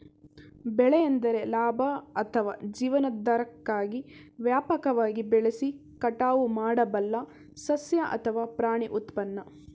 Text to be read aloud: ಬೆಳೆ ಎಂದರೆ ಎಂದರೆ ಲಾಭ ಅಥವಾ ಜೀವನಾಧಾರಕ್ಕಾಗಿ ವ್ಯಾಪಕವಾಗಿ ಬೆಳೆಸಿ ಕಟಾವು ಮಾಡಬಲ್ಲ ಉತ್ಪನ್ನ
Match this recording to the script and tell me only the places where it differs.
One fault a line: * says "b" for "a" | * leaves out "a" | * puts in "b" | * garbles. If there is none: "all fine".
* leaves out "ಎಂದರೆ"
* puts in "ಸಸ್ಯ ಅಥವಾ ಪ್ರಾಣಿ"